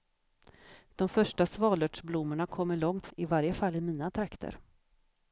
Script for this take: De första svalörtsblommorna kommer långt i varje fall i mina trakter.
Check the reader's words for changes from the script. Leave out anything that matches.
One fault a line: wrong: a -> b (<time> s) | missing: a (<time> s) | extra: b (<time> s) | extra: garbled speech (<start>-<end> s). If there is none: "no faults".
no faults